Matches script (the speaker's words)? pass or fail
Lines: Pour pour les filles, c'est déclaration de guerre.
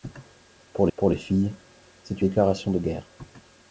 pass